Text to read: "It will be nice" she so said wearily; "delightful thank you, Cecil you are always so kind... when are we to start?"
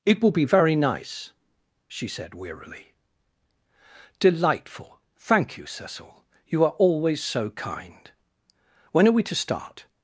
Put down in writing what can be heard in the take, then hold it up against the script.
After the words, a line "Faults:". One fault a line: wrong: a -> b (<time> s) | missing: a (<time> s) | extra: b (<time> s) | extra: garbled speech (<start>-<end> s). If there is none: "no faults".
"It will be very nice" she said wearily; "delightful thank you, Cecil you are always so kind... when are we to start?"
Faults:
extra: very (0.5 s)
missing: so (2.1 s)